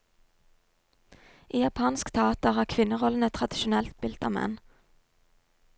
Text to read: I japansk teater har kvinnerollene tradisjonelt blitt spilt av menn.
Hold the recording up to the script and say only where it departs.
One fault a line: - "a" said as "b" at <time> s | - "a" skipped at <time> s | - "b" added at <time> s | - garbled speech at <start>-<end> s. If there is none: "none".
- "blitt" skipped at 4.0 s